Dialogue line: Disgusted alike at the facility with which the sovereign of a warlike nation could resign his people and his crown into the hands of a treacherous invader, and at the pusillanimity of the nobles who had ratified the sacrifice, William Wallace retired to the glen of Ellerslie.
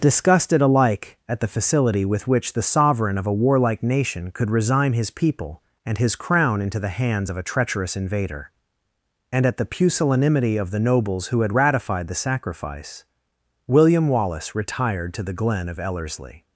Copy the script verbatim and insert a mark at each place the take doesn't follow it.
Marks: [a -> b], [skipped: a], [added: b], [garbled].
Disgusted alike at the facility with which the sovereign of a warlike nation could resign his people and his crown into the hands of a treacherous invader, and at the pusillanimity of the nobles who had ratified the sacrifice, William Wallace retired to the glen of Ellerslie.